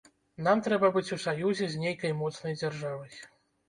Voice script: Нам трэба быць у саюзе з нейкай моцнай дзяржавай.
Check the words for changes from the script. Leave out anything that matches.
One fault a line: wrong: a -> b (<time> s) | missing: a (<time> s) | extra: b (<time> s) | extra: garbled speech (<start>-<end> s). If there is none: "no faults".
no faults